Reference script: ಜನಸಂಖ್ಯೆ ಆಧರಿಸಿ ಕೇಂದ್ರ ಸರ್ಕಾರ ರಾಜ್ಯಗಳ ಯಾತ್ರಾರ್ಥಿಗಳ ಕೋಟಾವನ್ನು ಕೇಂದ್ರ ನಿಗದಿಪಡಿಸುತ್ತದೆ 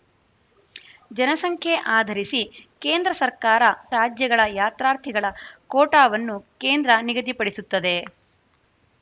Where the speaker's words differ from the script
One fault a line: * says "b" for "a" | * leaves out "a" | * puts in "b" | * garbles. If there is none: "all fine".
all fine